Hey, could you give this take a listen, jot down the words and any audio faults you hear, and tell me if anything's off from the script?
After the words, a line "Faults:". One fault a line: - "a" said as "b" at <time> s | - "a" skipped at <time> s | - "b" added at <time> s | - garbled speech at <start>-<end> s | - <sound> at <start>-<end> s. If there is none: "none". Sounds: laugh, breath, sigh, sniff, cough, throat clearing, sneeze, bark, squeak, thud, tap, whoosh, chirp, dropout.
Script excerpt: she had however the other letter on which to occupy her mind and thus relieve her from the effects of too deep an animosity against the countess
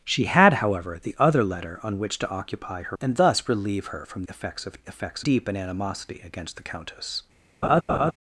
she had however the other letter on which to occupy her and thus relieve her from effects of effects deep an animosity against the countess
Faults:
- "mind" skipped at 3.0 s
- "the" skipped at 4.2 s
- "too" said as "effects" at 4.9 s
- laugh at 7.6-8.1 s